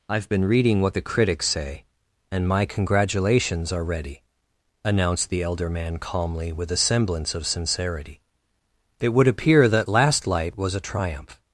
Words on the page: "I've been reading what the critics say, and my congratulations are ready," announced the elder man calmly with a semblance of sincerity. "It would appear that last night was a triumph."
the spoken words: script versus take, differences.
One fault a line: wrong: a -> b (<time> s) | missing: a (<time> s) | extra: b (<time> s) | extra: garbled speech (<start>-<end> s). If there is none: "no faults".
wrong: night -> light (10.3 s)